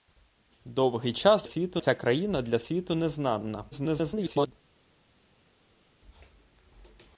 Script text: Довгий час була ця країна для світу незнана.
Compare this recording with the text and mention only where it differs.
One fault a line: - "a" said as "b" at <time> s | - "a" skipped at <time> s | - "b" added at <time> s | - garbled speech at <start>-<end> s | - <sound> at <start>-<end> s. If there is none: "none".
- "була" said as "світу" at 1.4 s
- garbled speech at 3.7-4.5 s